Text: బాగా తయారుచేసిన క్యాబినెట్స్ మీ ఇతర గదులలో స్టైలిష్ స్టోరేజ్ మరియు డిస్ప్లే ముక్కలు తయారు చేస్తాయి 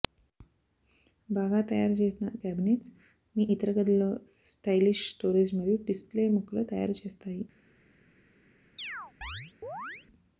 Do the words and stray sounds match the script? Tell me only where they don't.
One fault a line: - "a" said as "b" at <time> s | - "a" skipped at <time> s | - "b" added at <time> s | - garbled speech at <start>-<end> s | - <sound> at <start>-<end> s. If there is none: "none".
- chirp at 8.8-10.1 s